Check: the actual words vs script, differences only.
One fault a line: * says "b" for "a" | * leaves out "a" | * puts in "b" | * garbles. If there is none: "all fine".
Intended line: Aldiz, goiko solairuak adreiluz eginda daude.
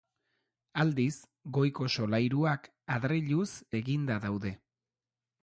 all fine